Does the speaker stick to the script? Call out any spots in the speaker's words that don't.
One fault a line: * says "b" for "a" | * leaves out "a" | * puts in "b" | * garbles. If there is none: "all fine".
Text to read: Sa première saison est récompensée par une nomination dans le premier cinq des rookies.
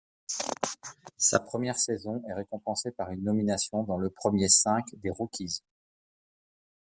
all fine